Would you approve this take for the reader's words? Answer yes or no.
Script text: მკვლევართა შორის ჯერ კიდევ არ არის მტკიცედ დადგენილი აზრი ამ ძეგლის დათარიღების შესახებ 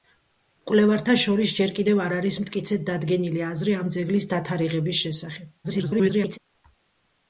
no